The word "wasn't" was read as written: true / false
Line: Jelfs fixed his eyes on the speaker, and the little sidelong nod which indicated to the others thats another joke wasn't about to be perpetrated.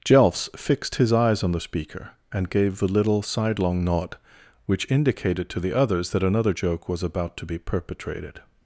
false